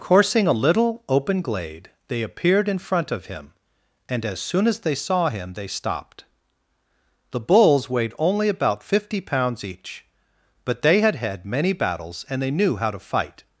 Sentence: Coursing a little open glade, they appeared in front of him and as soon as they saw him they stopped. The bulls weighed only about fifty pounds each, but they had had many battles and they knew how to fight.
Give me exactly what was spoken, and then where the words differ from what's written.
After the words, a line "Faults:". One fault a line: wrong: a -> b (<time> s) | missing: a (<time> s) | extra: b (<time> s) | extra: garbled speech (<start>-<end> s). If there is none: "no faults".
Coursing a little open glade, they appeared in front of him and as soon as they saw him they stopped. The bulls weighed only about fifty pounds each, but they had had many battles and they knew how to fight.
Faults:
no faults